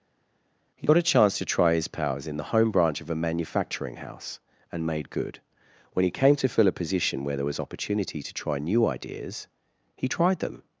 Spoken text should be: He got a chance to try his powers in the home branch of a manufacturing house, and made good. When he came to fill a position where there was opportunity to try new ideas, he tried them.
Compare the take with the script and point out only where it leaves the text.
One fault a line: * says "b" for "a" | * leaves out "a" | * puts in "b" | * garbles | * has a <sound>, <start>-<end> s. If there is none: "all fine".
all fine